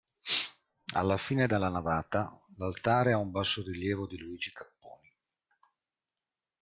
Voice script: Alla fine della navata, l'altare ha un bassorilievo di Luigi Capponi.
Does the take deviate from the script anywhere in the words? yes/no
no